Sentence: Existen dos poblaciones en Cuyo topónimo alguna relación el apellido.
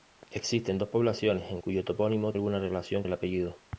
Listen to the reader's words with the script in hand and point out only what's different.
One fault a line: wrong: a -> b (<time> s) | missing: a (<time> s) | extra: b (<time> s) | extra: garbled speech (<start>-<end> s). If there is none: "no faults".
no faults